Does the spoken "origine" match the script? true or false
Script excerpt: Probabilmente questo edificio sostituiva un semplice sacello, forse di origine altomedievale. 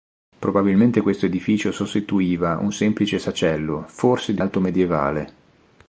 false